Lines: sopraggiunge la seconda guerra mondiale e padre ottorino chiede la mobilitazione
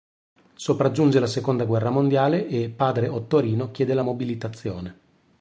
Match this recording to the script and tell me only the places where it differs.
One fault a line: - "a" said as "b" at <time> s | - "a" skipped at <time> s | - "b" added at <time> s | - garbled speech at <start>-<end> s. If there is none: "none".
none